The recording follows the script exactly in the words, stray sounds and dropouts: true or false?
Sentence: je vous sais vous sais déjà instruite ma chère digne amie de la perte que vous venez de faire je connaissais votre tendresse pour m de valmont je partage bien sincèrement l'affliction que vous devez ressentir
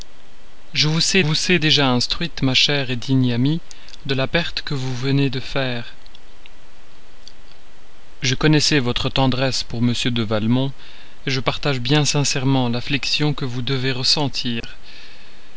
false